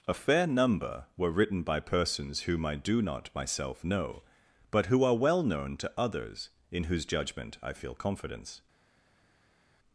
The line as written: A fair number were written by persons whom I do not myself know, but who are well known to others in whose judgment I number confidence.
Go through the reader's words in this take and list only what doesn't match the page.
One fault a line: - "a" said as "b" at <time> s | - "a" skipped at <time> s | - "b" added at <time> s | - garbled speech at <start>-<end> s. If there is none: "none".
- "number" said as "feel" at 7.7 s